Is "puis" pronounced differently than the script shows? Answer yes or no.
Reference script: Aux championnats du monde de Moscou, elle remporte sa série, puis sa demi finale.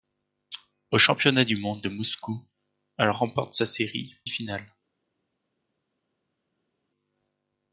yes